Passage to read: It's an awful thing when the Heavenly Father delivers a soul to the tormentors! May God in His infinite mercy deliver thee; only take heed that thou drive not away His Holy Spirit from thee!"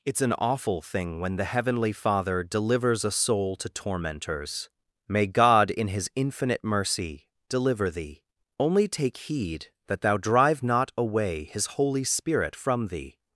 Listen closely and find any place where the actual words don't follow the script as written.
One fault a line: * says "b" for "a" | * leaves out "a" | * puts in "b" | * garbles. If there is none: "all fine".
* leaves out "the"